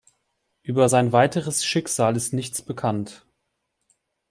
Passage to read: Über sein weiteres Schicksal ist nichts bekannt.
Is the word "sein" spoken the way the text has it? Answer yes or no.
yes